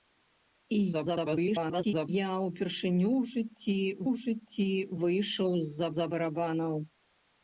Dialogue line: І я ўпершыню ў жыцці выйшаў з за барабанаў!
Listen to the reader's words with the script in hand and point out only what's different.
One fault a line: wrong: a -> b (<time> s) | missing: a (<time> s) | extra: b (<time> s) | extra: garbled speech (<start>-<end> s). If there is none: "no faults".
extra: garbled speech (0.9-2.1 s)
extra: ў жыцці (4.1 s)
extra: за (5.9 s)